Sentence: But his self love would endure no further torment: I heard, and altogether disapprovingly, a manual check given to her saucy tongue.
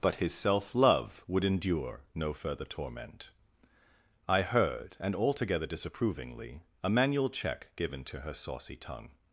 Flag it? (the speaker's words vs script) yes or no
no